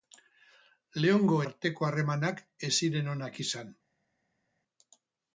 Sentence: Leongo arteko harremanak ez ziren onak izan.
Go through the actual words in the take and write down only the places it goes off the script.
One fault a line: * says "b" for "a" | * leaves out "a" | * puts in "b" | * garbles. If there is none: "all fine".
all fine